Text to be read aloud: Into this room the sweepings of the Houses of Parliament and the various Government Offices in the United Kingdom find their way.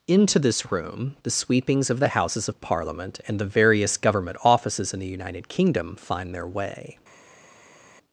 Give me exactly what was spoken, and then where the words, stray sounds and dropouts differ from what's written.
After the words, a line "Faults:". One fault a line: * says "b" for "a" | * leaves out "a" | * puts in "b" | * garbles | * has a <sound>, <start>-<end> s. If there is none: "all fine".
Into this room the sweepings of the Houses of Parliament and the various Government Offices in the United Kingdom find their way.
Faults:
all fine